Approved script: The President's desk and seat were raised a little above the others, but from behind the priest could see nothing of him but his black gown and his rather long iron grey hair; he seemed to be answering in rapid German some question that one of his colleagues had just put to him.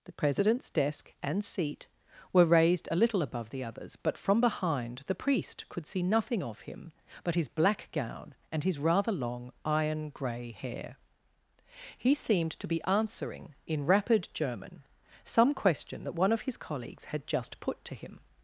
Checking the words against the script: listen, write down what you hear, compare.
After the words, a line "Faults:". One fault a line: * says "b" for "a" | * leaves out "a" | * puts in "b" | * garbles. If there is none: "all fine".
The President's desk and seat were raised a little above the others, but from behind the priest could see nothing of him but his black gown and his rather long iron grey hair; he seemed to be answering in rapid German some question that one of his colleagues had just put to him.
Faults:
all fine